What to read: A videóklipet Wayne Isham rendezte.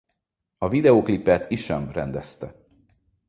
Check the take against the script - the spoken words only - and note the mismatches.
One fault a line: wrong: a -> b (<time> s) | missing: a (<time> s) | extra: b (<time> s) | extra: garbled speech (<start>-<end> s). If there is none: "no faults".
missing: Wayne (1.5 s)